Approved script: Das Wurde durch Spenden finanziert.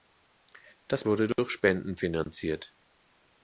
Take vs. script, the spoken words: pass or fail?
pass